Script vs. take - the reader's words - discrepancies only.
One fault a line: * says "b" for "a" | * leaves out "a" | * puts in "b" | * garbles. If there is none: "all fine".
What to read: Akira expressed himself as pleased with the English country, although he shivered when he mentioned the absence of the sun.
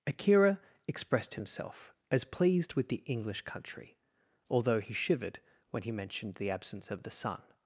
all fine